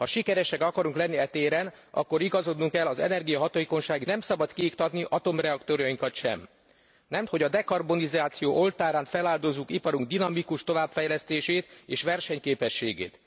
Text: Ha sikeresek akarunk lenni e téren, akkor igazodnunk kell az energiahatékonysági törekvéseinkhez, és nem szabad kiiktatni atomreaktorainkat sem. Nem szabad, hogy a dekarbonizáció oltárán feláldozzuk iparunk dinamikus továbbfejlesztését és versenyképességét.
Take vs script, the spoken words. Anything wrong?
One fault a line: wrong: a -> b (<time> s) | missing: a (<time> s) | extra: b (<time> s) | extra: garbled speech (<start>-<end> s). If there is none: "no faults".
missing: törekvéseinkhez és (4.0 s)
missing: szabad (7.2 s)